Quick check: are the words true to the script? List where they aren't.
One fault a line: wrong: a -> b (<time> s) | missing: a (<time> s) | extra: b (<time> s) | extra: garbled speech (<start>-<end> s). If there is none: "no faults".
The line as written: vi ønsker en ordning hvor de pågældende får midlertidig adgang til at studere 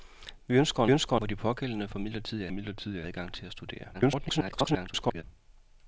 wrong: ordning -> ønsker (0.9 s)
extra: midlertidig (2.5 s)
extra: garbled speech (3.9-5.2 s)